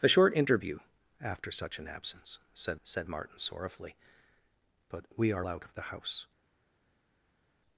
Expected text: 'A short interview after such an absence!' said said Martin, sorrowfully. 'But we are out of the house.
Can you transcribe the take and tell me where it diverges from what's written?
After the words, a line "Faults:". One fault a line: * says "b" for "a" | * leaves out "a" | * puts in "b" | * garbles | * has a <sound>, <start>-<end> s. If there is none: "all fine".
'A short interview after such an absence!' said said Martin, sorrowfully. 'But we are out of the house.
Faults:
all fine